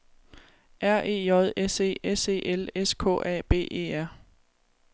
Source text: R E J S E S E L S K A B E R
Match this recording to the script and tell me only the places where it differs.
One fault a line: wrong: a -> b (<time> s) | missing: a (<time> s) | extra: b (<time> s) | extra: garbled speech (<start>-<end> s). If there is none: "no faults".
no faults